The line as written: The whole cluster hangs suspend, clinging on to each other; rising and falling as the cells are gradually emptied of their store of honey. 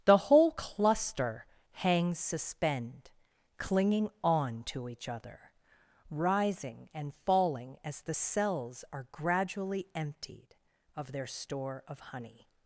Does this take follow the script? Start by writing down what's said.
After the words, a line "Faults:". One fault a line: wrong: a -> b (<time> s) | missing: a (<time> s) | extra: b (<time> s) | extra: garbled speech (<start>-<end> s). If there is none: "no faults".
The whole cluster hangs suspend, clinging on to each other; rising and falling as the cells are gradually emptied of their store of honey.
Faults:
no faults